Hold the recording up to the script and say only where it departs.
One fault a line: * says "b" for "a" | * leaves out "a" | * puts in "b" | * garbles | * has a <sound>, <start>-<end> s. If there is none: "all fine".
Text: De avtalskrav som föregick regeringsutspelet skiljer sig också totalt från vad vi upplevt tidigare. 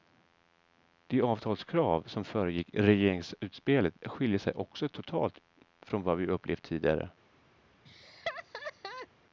* has a laugh, 7.9-9.1 s